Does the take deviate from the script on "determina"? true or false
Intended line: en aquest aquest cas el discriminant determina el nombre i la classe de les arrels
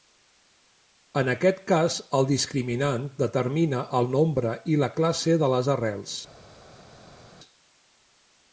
false